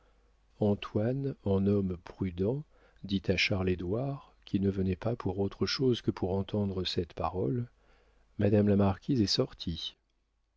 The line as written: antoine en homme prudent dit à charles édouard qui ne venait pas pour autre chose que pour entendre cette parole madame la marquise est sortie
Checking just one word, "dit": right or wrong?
right